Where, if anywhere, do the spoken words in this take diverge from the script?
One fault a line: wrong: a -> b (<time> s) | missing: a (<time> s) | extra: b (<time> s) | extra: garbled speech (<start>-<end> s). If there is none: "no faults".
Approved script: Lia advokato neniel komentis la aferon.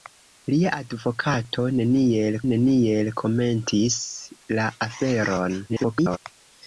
extra: neniel (2.5 s)
extra: garbled speech (5.7-6.2 s)